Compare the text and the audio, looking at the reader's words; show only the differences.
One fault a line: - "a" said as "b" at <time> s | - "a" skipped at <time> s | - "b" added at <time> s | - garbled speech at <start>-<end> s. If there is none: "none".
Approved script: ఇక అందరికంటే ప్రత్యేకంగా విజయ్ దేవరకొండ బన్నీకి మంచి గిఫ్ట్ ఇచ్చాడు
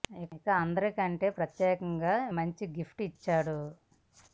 - "విజయ్ దేవరకొండ బన్నీకి" skipped at 2.1 s